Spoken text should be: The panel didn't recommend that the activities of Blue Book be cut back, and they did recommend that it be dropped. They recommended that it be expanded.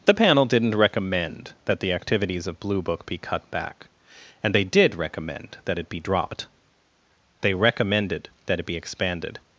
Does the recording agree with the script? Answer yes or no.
yes